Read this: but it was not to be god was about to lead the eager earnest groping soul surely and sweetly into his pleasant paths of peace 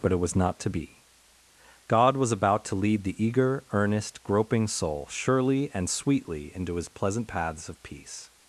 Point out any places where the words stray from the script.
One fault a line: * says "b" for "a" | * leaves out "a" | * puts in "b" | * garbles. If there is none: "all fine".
all fine